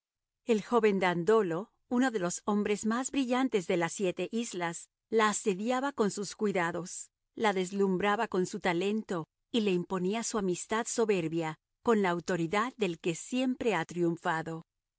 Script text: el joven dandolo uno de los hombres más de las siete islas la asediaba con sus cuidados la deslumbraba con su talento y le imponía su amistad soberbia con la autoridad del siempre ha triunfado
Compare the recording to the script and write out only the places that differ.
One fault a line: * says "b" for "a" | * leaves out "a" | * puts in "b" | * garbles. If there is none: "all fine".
* puts in "brillantes"
* puts in "que"